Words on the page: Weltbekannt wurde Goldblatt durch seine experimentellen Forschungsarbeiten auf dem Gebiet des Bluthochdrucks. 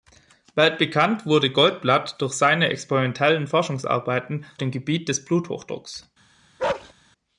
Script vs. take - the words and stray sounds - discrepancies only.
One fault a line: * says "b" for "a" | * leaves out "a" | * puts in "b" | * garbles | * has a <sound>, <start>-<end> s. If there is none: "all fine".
* leaves out "auf"
* has a bark, 6.6-6.9 s